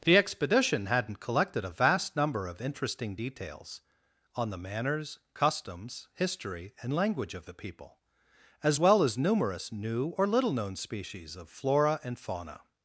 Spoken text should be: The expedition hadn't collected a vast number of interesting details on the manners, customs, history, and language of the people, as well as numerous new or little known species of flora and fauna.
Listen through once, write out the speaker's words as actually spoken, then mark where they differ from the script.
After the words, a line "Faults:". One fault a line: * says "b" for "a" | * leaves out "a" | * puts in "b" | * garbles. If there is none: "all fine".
The expedition hadn't collected a vast number of interesting details on the manners, customs, history, and language of the people, as well as numerous new or little known species of flora and fauna.
Faults:
all fine